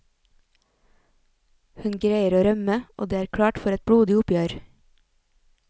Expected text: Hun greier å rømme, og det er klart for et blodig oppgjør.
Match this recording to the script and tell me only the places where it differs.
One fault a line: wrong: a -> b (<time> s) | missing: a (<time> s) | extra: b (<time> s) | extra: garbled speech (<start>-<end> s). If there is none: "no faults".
no faults